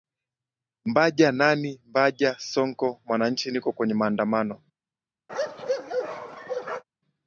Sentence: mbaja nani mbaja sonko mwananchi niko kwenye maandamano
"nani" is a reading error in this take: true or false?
false